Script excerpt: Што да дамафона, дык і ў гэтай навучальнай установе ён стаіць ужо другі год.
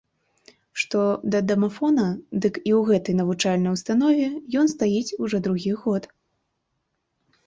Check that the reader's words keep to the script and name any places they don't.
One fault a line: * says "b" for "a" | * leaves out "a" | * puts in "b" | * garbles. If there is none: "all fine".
all fine